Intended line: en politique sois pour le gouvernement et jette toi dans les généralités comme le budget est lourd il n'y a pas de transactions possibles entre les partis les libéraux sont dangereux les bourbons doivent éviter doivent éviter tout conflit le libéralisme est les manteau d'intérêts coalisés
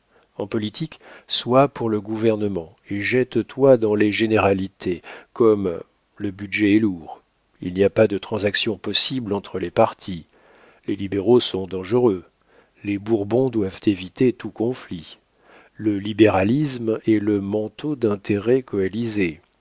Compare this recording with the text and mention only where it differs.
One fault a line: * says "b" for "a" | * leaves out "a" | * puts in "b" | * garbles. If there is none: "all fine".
* leaves out "doivent éviter"
* says "le" for "les"